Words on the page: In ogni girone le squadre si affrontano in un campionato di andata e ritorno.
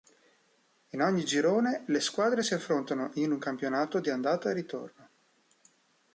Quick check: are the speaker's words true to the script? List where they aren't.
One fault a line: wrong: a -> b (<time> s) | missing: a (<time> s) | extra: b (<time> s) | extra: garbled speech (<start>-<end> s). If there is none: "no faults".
no faults